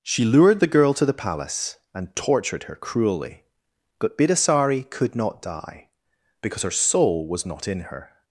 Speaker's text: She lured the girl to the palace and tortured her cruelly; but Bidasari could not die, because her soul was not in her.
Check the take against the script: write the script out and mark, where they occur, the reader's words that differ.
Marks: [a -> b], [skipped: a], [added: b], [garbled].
She lured the girl to the palace and tortured her cruelly; but Bidasari could not die, because her soul was not in her.